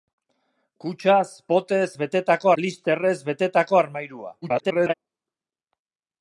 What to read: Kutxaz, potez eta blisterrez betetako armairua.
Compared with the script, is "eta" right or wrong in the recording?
wrong